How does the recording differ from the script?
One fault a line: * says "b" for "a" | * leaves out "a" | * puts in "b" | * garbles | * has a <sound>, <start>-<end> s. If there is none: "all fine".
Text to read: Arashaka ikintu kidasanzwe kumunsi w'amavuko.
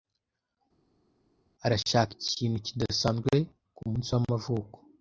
all fine